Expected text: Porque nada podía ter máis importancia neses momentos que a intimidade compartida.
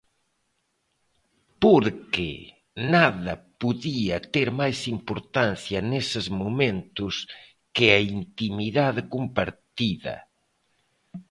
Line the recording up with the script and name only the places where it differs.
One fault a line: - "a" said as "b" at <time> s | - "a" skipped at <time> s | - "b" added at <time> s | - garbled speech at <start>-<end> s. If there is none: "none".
none